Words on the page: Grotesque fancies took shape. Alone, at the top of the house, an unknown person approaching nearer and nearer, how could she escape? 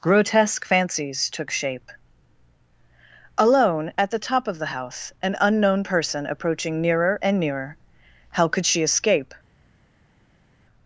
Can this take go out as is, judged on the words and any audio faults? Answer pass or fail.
pass